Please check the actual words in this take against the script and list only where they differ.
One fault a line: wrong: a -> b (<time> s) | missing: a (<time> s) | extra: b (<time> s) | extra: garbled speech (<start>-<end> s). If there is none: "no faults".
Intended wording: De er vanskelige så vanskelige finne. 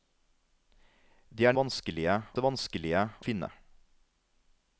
no faults